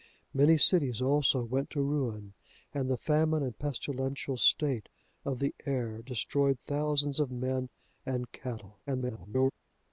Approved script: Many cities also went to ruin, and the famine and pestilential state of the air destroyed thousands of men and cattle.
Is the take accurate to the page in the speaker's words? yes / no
no